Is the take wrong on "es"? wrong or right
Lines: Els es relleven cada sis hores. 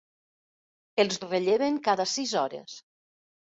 right